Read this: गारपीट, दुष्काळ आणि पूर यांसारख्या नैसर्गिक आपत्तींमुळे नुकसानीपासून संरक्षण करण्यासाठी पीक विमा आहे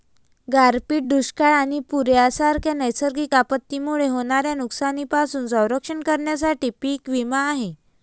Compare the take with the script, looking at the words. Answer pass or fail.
fail